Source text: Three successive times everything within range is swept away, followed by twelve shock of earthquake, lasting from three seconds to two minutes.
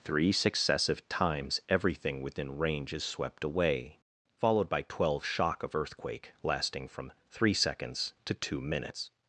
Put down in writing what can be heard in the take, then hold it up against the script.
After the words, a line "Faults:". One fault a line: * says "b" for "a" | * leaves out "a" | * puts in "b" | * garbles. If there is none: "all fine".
Three successive times everything within range is swept away, followed by twelve shock of earthquake, lasting from three seconds to two minutes.
Faults:
all fine